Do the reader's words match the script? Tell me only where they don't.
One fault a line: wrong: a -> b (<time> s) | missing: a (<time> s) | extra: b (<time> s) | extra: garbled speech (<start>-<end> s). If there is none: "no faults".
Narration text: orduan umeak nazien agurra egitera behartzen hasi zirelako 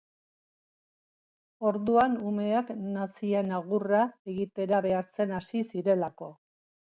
no faults